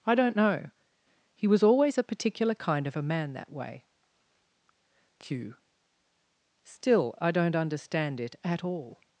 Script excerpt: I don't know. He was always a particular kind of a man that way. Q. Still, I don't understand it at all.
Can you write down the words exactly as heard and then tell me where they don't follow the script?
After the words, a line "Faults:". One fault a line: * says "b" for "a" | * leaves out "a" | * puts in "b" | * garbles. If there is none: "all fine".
I don't know. He was always a particular kind of a man that way. Q. Still, I don't understand it at all.
Faults:
all fine